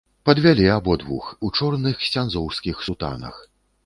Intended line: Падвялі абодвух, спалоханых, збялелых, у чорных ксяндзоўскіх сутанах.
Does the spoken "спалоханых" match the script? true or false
false